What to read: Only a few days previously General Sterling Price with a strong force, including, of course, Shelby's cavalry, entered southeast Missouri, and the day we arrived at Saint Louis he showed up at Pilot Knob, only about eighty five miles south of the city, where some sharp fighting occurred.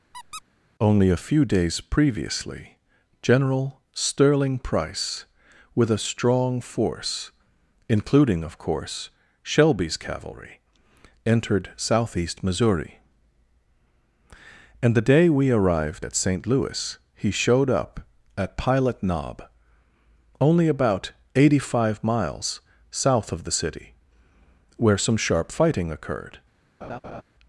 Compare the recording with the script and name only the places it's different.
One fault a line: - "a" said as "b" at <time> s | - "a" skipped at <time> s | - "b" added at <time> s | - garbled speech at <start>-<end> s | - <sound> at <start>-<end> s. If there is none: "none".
- squeak at 0.1-0.4 s
- laugh at 26.8-27.2 s